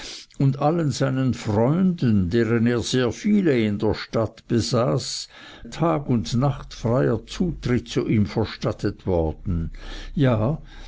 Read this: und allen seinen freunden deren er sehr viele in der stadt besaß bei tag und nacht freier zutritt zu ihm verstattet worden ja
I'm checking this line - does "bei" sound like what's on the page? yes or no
no